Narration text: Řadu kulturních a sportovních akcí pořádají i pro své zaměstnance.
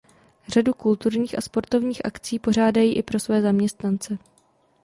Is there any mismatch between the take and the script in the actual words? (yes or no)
no